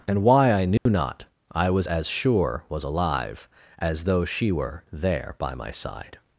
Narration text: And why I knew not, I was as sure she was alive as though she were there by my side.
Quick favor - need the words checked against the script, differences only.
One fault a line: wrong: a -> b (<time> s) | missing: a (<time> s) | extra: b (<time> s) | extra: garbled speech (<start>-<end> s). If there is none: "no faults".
missing: she (2.6 s)